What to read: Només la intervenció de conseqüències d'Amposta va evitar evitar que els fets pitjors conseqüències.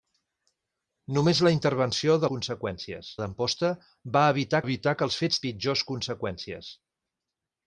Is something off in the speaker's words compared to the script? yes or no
no